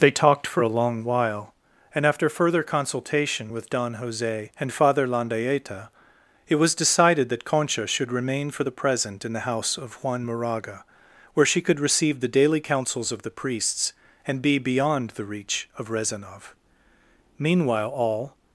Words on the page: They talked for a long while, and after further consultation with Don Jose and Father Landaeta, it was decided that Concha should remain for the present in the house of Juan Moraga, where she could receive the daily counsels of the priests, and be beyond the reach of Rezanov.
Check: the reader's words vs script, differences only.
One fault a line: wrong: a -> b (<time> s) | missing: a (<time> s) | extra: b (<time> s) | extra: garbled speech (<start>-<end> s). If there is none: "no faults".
extra: Meanwhile all (17.4 s)